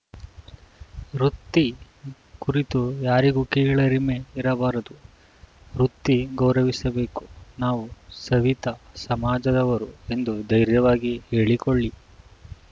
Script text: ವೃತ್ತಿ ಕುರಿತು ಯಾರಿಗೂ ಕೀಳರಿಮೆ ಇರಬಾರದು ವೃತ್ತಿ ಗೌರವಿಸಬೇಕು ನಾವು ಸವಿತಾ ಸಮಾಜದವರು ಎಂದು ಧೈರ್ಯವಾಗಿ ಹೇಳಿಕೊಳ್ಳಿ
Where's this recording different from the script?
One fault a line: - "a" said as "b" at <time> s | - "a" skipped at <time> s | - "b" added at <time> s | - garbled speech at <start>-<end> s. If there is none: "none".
none